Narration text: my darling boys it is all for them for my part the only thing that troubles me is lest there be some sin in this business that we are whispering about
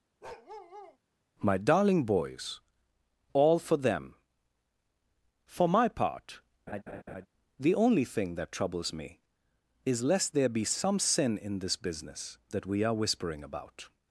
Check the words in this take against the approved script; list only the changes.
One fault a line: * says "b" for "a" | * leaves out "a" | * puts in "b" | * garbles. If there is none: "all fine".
* leaves out "it is"